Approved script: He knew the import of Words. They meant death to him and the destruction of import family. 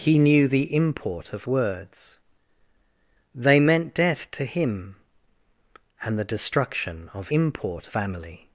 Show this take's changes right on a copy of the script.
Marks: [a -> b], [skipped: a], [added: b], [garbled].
He knew the import of Words. They meant death to him and the destruction of import family.